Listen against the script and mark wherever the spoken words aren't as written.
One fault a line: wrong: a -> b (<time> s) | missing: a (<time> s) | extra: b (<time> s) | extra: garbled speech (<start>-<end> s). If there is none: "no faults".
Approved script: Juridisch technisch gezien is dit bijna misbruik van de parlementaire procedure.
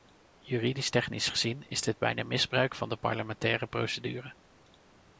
no faults